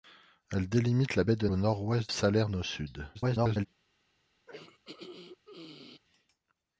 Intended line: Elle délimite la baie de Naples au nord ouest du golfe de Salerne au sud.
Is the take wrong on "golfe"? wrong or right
wrong